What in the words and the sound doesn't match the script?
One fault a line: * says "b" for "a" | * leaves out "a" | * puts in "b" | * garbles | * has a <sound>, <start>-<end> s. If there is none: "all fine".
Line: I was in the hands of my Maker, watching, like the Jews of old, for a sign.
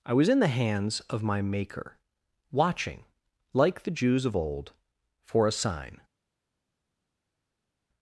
all fine